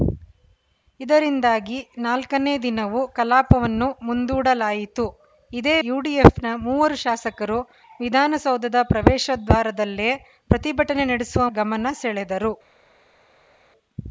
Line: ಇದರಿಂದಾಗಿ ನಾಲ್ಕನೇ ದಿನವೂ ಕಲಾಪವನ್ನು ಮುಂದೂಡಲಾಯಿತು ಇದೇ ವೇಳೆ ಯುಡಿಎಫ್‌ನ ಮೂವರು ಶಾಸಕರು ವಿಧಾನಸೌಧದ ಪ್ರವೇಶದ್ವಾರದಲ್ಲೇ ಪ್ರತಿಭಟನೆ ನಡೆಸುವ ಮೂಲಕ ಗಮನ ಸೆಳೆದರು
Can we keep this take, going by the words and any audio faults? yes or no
no